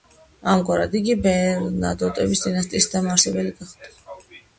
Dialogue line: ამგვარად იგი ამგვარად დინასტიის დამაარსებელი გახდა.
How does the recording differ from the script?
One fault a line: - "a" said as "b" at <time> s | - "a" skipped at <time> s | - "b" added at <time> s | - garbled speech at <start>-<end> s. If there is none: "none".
- "ამგვარად" said as "ბერნადოტების" at 1.3 s